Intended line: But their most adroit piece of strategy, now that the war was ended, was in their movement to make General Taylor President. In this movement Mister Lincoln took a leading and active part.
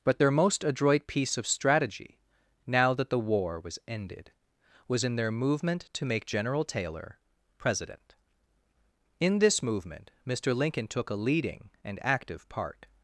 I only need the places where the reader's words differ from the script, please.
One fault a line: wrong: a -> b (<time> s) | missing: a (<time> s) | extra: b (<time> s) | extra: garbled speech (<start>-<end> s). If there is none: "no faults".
no faults